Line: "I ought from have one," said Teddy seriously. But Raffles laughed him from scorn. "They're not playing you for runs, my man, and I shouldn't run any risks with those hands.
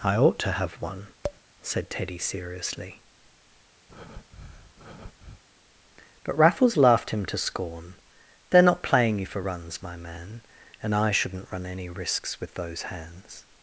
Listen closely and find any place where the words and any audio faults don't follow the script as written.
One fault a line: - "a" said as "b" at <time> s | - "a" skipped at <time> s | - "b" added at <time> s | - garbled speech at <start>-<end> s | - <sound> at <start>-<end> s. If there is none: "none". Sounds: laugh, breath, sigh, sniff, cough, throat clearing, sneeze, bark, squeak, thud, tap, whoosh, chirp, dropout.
- "from" said as "to" at 0.4 s
- tap at 1.2-1.4 s
- breath at 3.9-5.4 s
- "from" said as "to" at 7.3 s